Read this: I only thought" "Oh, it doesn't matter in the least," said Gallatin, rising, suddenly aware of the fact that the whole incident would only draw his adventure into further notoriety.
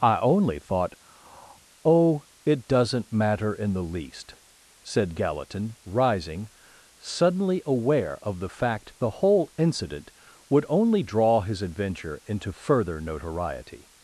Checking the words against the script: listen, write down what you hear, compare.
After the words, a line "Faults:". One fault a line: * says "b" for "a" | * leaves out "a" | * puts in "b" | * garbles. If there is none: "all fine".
I only thought" "Oh, it doesn't matter in the least," said Gallatin, rising, suddenly aware of the fact the whole incident would only draw his adventure into further notoriety.
Faults:
* leaves out "that"